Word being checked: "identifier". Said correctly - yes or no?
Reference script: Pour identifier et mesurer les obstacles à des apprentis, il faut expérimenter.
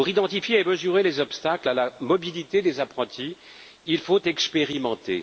yes